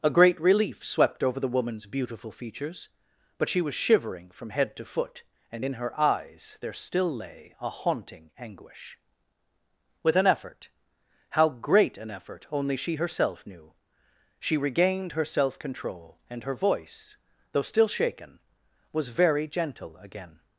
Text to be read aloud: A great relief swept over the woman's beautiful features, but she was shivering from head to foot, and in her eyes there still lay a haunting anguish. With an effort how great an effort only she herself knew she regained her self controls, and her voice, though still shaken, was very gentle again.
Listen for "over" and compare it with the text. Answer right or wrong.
right